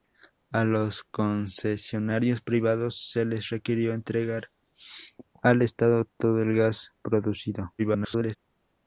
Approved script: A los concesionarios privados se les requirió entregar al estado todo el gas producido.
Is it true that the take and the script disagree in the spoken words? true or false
true